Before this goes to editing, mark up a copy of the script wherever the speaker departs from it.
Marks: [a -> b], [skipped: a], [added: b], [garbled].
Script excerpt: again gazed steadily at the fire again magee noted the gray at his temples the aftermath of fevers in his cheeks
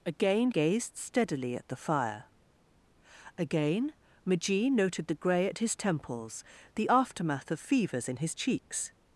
again gazed steadily at the fire again magee noted the gray at his temples the aftermath of fevers in his cheeks